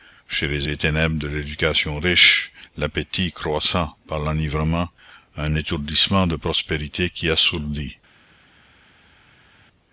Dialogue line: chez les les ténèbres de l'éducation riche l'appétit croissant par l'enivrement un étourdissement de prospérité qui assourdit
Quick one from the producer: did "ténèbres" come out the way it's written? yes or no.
yes